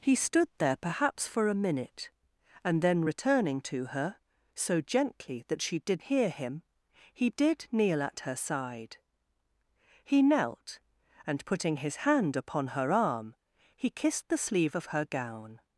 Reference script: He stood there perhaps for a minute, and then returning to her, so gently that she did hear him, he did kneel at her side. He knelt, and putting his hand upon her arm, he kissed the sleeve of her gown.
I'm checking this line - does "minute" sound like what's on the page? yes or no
yes